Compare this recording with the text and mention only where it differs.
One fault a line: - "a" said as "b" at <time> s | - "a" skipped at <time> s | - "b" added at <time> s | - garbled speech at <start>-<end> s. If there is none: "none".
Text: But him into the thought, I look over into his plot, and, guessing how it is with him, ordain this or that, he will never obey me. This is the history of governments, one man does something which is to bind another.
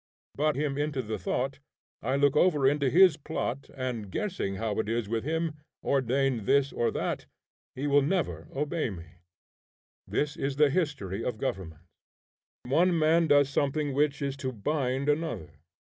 none